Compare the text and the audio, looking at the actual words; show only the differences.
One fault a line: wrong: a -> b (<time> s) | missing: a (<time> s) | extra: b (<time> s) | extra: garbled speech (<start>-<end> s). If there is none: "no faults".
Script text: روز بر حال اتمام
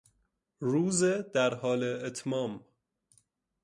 wrong: بر -> در (1.0 s)